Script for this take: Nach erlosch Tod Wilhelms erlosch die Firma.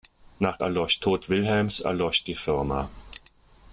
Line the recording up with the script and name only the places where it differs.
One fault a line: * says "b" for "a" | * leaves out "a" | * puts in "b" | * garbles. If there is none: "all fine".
all fine